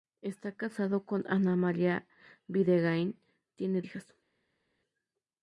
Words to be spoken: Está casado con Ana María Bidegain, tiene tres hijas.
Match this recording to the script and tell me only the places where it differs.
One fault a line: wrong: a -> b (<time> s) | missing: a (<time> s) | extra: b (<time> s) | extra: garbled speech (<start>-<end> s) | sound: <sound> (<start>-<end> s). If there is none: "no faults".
missing: tres (3.8 s)